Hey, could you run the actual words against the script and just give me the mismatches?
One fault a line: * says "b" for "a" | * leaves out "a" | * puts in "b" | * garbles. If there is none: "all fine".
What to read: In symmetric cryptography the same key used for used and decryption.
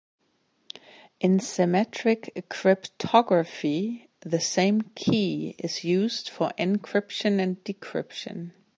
* puts in "is"
* says "encryption" for "used"